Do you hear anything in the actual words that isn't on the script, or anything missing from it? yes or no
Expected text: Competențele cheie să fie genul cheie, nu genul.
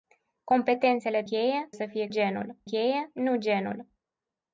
no